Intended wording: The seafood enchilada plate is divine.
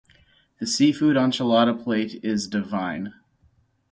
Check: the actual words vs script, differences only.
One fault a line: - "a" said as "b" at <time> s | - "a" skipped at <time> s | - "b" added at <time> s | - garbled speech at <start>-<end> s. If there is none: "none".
none